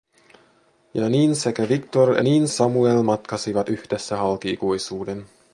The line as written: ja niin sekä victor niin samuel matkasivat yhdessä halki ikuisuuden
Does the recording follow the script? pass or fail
pass